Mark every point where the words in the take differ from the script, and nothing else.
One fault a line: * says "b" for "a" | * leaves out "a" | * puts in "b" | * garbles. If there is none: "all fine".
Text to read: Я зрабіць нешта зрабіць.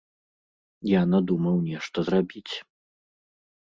* says "надумаў" for "зрабіць"